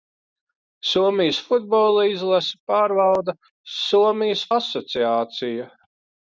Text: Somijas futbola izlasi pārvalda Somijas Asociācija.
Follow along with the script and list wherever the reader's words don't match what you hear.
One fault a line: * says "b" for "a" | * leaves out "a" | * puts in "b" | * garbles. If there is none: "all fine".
all fine